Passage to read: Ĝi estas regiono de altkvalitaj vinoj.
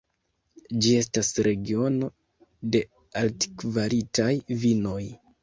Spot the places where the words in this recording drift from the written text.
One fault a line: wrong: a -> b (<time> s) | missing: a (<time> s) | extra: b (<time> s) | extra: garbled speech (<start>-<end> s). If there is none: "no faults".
no faults